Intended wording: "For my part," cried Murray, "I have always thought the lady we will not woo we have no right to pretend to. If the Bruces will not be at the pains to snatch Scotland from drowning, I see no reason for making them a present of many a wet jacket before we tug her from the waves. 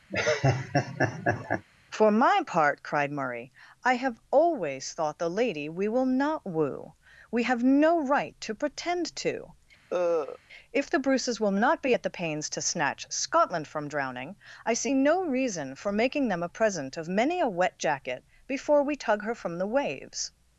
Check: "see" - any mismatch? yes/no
no